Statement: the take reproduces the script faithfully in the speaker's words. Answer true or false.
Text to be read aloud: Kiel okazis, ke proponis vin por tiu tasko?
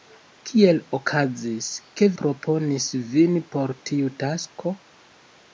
true